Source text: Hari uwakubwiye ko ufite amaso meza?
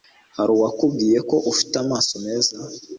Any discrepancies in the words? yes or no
no